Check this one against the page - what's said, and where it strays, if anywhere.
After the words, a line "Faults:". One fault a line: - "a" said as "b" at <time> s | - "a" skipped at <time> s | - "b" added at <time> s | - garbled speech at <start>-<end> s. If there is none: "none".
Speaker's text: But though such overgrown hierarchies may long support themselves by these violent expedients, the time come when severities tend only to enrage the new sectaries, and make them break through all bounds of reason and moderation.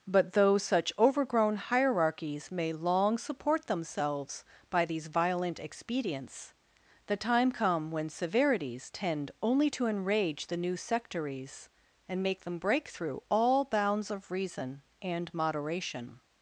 But though such overgrown hierarchies may long support themselves by these violent expedients, the time come when severities tend only to enrage the new sectaries, and make them break through all bounds of reason and moderation.
Faults:
none